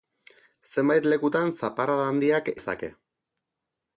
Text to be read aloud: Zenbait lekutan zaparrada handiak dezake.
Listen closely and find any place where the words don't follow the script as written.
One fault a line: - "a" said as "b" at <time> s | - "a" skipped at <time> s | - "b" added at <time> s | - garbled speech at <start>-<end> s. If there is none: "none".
none